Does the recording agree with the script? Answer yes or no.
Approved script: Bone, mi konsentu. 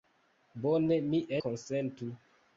yes